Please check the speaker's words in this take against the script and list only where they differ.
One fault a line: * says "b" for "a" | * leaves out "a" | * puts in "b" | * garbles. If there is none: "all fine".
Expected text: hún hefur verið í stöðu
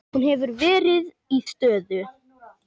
all fine